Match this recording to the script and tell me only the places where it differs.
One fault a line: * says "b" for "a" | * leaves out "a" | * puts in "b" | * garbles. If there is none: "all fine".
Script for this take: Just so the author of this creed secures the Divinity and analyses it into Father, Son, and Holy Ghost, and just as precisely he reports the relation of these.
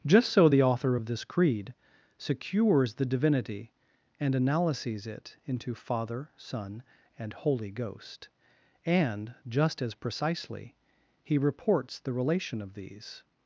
all fine